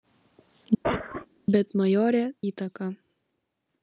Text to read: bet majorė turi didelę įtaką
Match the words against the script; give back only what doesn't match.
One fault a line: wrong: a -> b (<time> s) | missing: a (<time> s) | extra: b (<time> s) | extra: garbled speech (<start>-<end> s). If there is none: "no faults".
missing: turi didelę (2.2 s)